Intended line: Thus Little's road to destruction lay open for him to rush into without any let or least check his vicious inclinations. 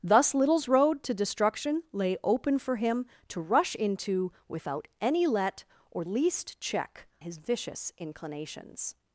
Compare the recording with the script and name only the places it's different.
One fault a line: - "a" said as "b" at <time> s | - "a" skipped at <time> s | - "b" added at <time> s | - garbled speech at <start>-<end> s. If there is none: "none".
none